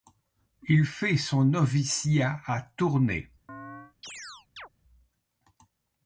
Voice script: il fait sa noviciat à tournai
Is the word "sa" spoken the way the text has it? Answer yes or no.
no